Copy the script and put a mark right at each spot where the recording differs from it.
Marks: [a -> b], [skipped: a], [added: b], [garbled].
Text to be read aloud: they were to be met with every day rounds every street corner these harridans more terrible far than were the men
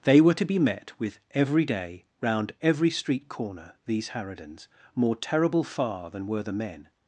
they were to be met with every day [rounds -> round] every street corner these harridans more terrible far than were the men